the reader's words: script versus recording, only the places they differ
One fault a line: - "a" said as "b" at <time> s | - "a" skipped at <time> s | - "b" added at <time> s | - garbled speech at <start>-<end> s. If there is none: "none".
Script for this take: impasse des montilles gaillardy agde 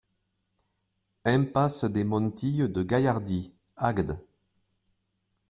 - "de" added at 2.7 s